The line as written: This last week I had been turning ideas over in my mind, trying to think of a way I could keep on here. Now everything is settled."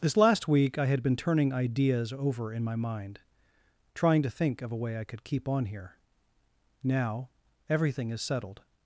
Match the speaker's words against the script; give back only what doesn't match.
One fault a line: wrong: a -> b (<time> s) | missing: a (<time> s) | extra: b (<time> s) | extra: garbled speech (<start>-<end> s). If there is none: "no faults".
no faults